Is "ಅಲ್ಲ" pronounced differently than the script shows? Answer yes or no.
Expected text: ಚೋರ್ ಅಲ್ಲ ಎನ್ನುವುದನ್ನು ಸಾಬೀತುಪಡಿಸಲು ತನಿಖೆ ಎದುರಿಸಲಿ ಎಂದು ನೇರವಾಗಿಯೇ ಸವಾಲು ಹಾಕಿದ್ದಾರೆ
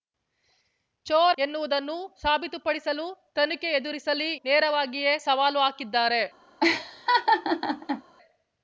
yes